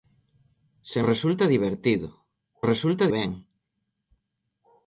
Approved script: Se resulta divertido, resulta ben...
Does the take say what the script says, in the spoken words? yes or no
yes